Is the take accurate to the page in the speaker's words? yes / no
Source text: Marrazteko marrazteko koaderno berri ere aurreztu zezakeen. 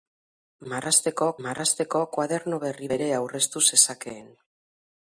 yes